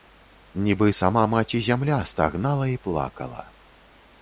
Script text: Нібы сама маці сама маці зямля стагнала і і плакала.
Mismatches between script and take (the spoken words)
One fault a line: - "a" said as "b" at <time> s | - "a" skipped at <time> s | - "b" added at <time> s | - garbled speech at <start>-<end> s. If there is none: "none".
- "сама маці" skipped at 1.6 s
- "і" skipped at 2.8 s